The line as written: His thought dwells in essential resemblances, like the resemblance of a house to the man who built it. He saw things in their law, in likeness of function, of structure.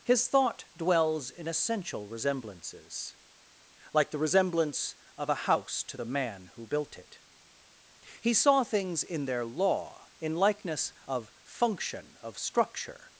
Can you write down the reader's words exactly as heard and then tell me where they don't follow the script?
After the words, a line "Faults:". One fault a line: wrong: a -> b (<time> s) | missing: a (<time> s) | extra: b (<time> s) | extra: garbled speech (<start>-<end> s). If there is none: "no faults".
His thought dwells in essential resemblances, like the resemblance of a house to the man who built it. He saw things in their law, in likeness of function, of structure.
Faults:
no faults